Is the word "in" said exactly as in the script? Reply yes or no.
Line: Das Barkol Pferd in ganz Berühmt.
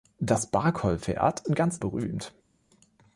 yes